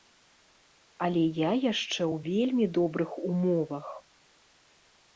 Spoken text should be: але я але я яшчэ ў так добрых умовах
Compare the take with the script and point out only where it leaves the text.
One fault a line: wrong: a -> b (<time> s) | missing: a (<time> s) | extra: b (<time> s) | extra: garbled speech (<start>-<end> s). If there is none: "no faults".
missing: але я (1.5 s)
wrong: так -> вельмі (2.3 s)